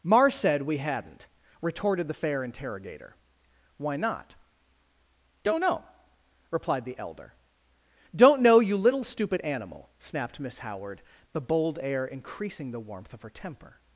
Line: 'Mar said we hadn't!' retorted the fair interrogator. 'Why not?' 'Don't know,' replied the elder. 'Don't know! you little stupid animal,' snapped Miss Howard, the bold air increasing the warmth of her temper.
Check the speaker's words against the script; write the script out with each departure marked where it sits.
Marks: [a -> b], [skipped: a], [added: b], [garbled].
'Mar said we hadn't!' retorted the fair interrogator. 'Why not?' 'Don't know,' replied the elder. 'Don't know! you little stupid animal,' snapped Miss Howard, the bold air increasing the warmth of her temper.